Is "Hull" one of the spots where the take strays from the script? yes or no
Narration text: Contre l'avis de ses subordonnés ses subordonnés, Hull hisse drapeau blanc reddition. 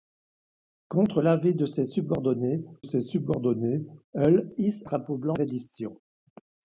no